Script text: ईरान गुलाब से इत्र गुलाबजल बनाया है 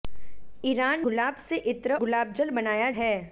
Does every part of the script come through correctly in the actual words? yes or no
yes